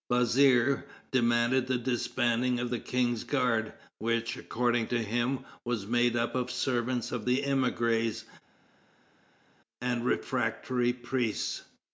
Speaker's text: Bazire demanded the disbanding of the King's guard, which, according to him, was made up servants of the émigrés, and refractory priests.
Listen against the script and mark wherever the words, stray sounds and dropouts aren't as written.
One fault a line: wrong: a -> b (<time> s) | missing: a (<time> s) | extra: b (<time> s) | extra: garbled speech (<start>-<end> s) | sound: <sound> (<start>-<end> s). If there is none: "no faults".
extra: of (6.3 s)